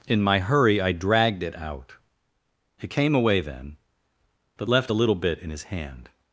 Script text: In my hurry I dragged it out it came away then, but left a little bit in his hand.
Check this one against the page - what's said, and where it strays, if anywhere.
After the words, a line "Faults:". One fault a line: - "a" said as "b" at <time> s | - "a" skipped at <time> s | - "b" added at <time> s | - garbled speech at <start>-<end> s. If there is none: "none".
In my hurry I dragged it out it came away then, but left a little bit in his hand.
Faults:
none